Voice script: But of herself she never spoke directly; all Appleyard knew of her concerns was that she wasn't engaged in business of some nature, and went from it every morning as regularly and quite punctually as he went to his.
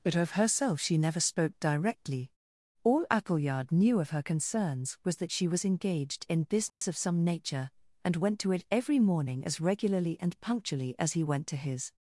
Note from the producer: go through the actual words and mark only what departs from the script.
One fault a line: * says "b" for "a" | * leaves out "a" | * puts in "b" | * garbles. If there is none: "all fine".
* says "was" for "wasn't"
* says "to" for "from"
* leaves out "quite"